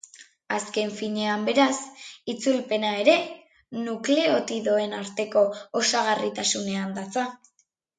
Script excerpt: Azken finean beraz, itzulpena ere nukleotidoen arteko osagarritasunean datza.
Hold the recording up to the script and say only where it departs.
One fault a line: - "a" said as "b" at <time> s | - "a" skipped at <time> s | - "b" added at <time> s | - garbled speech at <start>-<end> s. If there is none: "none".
none